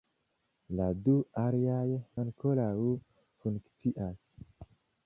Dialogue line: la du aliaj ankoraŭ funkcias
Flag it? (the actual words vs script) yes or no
no